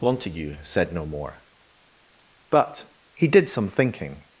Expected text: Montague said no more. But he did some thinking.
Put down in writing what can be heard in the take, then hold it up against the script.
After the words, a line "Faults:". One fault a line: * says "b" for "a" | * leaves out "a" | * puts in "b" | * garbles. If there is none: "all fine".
Montague said no more. But he did some thinking.
Faults:
all fine